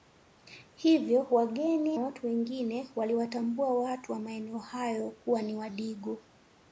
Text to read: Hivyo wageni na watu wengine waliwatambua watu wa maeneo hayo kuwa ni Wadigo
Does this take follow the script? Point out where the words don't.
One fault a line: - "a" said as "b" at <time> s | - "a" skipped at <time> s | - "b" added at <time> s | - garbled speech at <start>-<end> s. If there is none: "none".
- "na" skipped at 2.0 s